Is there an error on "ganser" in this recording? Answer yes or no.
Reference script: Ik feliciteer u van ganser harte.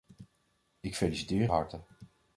yes